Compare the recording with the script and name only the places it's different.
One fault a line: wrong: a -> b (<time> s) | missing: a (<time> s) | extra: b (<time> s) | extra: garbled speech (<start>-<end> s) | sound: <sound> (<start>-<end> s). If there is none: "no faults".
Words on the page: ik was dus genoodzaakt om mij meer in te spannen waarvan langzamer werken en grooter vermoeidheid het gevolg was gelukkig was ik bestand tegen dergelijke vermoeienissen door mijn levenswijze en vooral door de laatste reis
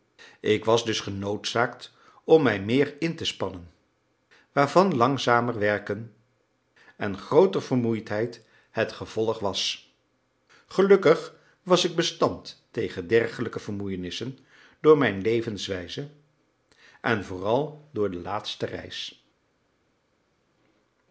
no faults